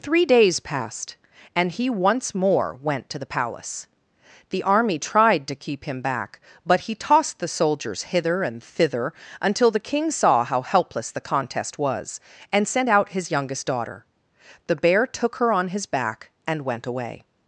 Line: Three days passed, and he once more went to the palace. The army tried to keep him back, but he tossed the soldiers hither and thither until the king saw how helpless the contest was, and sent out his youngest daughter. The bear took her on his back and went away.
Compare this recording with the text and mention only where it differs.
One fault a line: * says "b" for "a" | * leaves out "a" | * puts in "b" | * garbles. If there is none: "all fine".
all fine